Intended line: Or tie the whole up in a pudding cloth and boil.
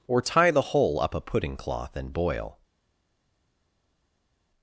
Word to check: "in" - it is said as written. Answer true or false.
false